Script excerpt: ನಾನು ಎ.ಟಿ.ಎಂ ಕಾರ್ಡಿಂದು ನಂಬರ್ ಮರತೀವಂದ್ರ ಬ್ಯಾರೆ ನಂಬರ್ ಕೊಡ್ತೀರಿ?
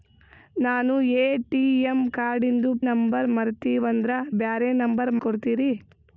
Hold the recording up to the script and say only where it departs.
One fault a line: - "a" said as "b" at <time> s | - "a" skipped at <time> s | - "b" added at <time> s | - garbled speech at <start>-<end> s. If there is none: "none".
none